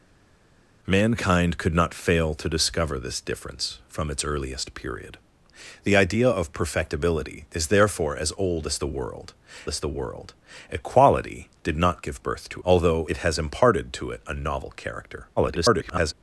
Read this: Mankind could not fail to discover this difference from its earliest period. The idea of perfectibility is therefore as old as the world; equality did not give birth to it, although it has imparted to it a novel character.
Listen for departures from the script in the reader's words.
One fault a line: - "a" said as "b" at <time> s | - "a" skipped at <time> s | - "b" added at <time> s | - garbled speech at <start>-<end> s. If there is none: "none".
- "as the world" added at 9.7 s
- "it" skipped at 12.6 s
- garbled speech at 15.4-16.1 s